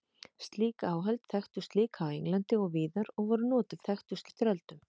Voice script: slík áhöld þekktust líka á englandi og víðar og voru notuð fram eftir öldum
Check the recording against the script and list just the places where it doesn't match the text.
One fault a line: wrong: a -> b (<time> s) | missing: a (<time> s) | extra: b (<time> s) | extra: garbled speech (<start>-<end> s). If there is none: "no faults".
wrong: fram -> þekktust (3.9 s)